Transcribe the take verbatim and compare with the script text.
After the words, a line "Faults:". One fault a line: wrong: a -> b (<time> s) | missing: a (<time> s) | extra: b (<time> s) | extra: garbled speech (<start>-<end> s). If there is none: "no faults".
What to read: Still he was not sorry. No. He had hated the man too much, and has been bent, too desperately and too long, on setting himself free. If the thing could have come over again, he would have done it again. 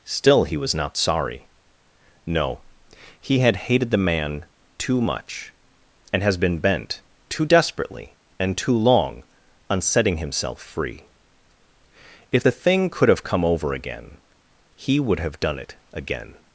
Still he was not sorry. No. He had hated the man too much, and has been bent, too desperately and too long, on setting himself free. If the thing could have come over again, he would have done it again.
Faults:
no faults